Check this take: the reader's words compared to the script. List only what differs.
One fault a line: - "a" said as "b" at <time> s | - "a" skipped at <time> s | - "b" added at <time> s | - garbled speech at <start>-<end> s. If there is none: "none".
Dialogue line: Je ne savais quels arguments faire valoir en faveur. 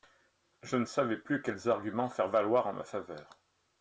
- "plus" added at 1.2 s
- "ma" added at 2.7 s